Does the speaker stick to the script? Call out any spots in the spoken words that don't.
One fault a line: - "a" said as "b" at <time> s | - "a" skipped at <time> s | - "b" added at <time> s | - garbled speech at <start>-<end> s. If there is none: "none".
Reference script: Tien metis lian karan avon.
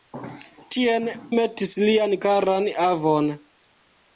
none